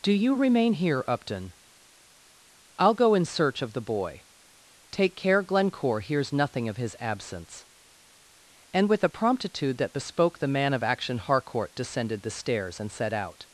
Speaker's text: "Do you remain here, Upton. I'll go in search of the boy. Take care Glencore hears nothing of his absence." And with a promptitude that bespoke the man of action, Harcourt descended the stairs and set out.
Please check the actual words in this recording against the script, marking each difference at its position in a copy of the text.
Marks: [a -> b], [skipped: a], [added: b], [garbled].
"Do you remain here, Upton. I'll go in search of the boy. Take care Glencore hears nothing of his absence." And with a promptitude that bespoke the man of action, Harcourt descended the stairs and set out.